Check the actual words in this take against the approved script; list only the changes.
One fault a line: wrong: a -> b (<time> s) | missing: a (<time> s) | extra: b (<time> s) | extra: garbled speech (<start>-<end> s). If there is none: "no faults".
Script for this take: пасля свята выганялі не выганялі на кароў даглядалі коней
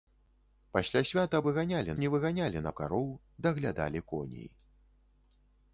no faults